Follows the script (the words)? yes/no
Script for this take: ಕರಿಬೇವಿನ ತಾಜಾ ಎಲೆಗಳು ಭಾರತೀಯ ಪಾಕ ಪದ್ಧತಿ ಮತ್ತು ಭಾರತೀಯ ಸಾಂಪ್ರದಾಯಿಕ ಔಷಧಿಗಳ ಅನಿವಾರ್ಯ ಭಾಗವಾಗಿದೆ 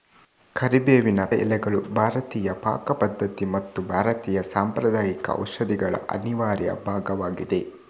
no